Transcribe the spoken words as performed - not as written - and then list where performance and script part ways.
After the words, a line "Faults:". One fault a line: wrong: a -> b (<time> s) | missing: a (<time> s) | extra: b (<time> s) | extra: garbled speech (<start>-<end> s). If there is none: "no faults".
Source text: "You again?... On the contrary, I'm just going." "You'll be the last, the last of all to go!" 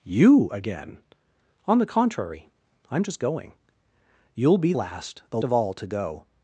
"You again?... On the contrary, I'm just going." "You'll be last, the of all to go!"
Faults:
missing: the (4.7 s)
missing: last (5.4 s)